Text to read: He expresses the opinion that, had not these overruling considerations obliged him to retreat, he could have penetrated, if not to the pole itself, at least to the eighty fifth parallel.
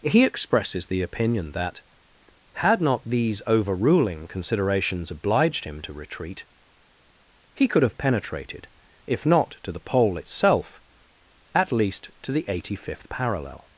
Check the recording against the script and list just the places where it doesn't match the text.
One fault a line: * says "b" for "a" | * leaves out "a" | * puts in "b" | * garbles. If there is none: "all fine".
all fine